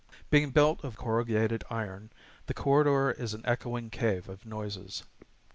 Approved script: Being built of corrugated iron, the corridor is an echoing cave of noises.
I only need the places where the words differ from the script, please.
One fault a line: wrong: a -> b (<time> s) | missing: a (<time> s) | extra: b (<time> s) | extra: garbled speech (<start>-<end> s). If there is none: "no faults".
no faults